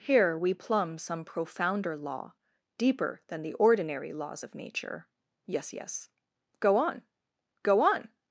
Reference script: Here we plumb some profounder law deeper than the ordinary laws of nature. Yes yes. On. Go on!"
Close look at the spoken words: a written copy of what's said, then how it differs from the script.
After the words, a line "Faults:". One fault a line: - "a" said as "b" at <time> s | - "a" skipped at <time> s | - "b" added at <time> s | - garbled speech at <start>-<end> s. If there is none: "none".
Here we plumb some profounder law deeper than the ordinary laws of nature. Yes yes. Go on. Go on!"
Faults:
- "Go" added at 6.6 s